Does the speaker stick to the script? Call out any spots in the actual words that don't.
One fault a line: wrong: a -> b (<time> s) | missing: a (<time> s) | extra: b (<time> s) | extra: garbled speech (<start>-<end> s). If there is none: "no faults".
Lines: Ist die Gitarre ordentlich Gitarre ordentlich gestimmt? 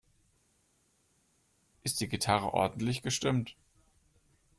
missing: Gitarre ordentlich (3.0 s)